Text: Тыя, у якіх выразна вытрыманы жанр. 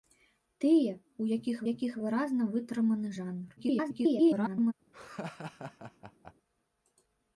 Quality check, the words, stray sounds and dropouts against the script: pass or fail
fail